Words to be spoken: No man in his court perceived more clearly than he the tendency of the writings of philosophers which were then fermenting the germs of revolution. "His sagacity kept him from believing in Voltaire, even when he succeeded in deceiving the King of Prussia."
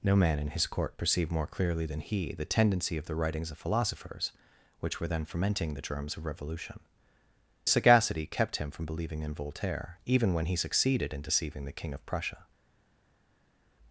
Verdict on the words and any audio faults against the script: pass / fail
fail